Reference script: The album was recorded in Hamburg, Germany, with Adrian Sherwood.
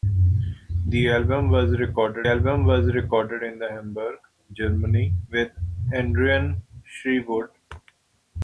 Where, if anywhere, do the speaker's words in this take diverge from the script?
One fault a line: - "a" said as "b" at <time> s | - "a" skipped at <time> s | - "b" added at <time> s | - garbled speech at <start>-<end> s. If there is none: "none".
- "album was recorded" added at 2.3 s